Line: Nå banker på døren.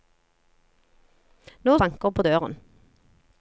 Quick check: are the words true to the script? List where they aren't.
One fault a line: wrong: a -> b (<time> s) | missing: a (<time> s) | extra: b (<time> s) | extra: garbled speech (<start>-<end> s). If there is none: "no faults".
no faults